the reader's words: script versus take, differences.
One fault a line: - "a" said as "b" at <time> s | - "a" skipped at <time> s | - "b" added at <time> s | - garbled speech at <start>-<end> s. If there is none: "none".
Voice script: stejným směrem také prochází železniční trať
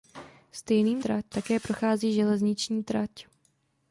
- "směrem" said as "trať" at 1.0 s